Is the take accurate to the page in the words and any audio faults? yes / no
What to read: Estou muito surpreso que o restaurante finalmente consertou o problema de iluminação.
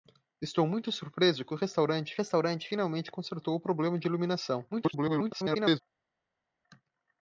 no